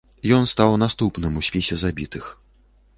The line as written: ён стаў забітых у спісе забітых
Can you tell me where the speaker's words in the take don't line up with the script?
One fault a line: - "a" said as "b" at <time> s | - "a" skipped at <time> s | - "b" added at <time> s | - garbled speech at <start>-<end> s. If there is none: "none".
- "забітых" said as "наступным" at 0.8 s